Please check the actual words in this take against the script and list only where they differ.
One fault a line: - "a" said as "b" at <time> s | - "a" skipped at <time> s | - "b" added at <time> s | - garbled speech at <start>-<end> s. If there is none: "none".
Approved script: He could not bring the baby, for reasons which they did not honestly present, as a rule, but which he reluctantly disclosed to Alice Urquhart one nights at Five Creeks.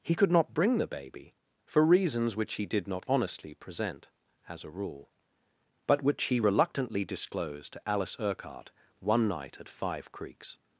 - "they" said as "he" at 2.5 s
- "nights" said as "night" at 9.3 s